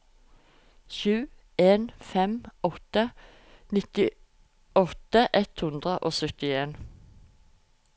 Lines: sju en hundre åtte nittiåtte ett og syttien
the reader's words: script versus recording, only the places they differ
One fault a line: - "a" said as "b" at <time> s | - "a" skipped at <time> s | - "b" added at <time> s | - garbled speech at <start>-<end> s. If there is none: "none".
- "hundre" said as "fem" at 2.0 s
- "hundre" added at 5.7 s